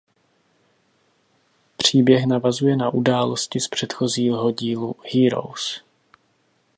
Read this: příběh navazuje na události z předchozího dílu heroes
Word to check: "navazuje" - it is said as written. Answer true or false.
true